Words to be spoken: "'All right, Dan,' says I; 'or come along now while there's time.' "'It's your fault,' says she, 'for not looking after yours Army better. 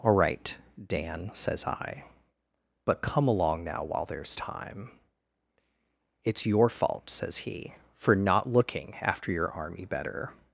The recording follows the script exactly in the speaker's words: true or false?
false